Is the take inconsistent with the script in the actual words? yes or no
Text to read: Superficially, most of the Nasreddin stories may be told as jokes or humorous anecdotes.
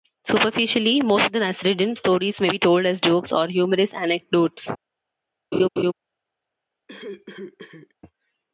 no